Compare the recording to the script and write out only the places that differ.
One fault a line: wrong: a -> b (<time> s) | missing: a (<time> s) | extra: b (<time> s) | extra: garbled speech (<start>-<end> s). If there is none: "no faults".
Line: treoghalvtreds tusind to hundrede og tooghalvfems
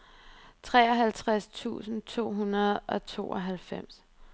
no faults